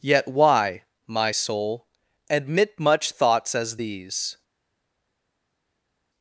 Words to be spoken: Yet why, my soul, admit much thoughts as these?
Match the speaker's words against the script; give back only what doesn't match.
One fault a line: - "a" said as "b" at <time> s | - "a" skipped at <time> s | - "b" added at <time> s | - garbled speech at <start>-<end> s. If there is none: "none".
none